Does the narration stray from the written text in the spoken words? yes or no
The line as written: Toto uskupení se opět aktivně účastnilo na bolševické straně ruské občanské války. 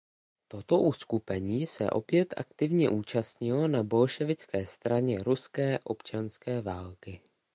no